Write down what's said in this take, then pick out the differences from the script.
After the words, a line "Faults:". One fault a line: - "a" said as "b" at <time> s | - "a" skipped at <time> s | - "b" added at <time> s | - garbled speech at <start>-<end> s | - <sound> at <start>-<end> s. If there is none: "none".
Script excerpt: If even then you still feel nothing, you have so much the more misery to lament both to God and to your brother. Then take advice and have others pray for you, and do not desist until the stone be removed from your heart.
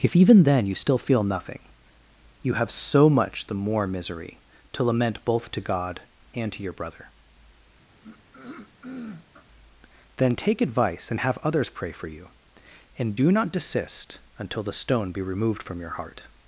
If even then you still feel nothing, you have so much the more misery to lament both to God and to your brother. Then take advice and have others pray for you, and do not desist until the stone be removed from your heart.
Faults:
- throat clearing at 7.9-9.5 s